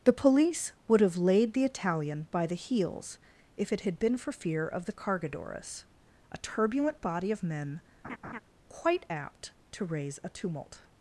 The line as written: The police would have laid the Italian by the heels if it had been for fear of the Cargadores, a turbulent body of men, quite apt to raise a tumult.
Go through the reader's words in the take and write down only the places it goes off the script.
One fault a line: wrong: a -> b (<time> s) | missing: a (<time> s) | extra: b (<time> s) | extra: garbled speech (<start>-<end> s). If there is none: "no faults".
no faults